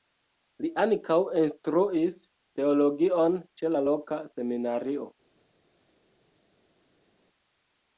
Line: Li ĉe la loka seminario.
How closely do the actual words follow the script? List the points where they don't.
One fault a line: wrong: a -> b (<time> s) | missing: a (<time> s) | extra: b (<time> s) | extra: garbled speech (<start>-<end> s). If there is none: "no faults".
extra: ankaŭ instruis teologion (0.8 s)